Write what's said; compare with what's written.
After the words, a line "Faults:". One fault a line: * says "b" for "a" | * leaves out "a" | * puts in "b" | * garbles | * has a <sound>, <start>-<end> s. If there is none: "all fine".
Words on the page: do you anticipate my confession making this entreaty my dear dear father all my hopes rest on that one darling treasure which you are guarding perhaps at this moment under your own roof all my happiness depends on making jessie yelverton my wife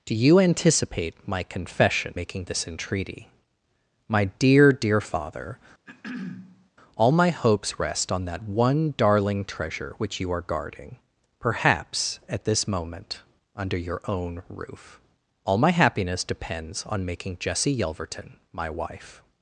do you anticipate my confession making this entreaty my dear dear father all my hopes rest on that one darling treasure which you are guarding perhaps at this moment under your own roof all my happiness depends on making jessie yelverton my wife
Faults:
* has a throat clearing, 5.9-6.7 s